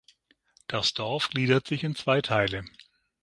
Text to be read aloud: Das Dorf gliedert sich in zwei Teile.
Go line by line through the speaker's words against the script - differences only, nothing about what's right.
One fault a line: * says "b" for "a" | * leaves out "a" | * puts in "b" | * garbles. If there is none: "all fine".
all fine